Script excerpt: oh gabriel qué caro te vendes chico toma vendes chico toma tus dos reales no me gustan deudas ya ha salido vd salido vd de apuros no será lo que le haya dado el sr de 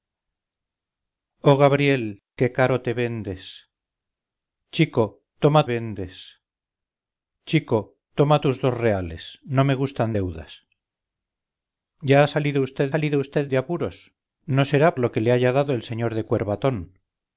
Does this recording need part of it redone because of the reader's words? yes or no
no